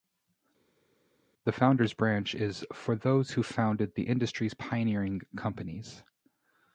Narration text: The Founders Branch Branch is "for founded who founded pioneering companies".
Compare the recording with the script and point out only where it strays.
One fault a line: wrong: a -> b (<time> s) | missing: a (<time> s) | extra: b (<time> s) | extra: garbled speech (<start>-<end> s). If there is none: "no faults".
missing: Branch (2.3 s)
wrong: founded -> those (2.9 s)
extra: the industry's (3.9 s)